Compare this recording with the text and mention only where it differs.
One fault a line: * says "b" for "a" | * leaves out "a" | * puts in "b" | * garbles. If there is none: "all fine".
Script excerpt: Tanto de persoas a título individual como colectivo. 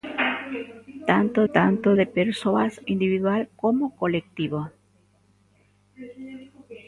* puts in "tanto"
* leaves out "a título"